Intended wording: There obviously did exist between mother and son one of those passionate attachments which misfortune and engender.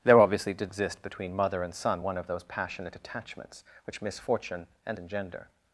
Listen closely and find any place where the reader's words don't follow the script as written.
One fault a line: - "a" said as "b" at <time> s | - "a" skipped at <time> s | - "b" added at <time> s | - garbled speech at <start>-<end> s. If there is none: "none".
none